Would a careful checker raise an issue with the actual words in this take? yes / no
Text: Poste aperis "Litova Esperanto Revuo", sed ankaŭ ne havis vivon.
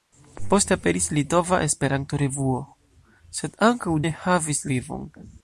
no